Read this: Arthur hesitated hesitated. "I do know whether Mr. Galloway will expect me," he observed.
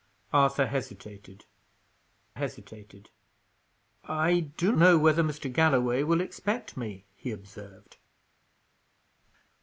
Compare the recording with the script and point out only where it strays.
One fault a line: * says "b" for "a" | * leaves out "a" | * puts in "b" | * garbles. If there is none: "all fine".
all fine